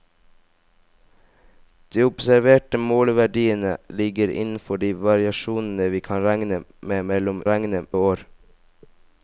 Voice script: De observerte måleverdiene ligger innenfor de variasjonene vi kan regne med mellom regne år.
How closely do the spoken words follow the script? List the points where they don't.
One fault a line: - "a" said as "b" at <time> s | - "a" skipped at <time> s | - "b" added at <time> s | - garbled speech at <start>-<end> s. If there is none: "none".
none